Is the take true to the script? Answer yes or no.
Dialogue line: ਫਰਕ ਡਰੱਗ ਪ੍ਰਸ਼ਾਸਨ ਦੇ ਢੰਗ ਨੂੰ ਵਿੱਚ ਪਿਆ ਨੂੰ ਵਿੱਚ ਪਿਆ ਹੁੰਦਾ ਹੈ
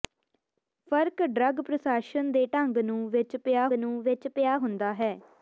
yes